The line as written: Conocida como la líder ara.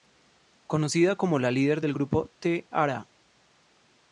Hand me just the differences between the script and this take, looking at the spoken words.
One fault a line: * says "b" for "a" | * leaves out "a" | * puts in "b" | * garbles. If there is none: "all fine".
* puts in "del grupo T"